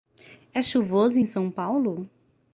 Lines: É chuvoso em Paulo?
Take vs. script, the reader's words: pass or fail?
fail